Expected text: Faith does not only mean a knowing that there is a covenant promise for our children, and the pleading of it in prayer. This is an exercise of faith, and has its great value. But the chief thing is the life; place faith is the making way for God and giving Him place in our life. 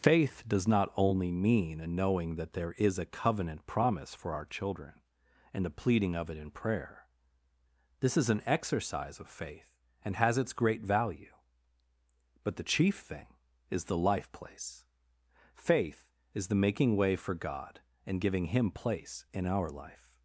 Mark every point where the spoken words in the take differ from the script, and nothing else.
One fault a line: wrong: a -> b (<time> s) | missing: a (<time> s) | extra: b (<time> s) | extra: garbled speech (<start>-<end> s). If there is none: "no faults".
no faults